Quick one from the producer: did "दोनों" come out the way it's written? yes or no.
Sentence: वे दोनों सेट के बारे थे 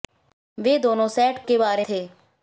yes